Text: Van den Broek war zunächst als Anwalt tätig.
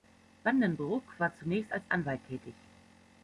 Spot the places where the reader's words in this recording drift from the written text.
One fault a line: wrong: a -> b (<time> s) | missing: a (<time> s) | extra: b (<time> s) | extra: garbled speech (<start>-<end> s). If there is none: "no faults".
no faults